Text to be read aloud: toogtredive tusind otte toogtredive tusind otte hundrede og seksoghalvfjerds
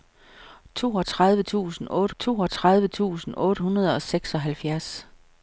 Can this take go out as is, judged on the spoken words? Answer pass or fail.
pass